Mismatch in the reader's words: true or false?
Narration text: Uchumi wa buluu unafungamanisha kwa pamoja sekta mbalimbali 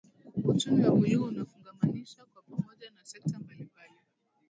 true